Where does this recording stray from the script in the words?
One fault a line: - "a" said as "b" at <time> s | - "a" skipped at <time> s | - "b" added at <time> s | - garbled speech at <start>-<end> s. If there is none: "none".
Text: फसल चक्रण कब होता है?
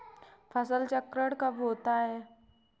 none